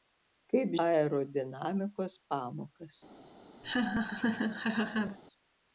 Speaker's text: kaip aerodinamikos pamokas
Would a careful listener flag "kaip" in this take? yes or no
no